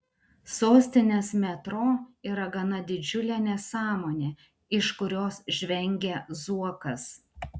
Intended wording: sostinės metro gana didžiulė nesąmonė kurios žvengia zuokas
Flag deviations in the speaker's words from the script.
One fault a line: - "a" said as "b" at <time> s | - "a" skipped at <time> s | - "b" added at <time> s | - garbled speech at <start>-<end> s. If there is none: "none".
- "yra" added at 2.3 s
- "iš" added at 4.8 s